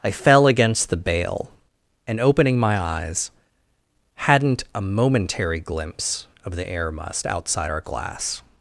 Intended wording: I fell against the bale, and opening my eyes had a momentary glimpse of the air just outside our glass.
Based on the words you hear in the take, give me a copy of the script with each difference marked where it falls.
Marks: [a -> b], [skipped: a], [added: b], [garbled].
I fell against the bale, and opening my eyes [had -> hadn't] a momentary glimpse of the air [just -> must] outside our glass.